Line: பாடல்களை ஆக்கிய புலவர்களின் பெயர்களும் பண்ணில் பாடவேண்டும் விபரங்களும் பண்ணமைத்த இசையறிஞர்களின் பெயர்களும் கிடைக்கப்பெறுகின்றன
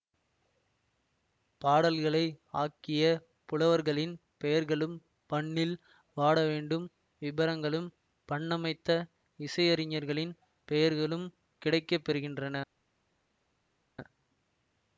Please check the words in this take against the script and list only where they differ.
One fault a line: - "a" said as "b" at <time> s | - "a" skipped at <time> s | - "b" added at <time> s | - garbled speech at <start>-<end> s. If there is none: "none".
none